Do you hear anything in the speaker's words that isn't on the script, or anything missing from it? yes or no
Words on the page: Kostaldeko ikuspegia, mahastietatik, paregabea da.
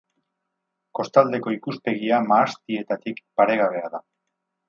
no